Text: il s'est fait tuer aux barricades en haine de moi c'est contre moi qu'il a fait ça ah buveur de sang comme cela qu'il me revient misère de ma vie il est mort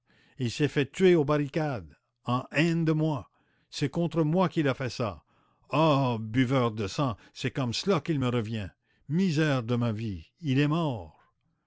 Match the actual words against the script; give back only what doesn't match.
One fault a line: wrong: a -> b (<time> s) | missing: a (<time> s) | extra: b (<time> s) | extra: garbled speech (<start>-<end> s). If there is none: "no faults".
extra: c'est (7.3 s)